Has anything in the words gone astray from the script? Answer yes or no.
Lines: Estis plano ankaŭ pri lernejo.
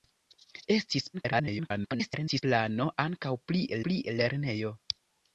yes